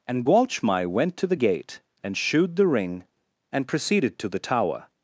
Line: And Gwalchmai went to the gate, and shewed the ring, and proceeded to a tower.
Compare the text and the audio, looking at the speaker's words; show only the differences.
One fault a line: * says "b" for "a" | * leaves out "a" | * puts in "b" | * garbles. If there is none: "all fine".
* says "the" for "a"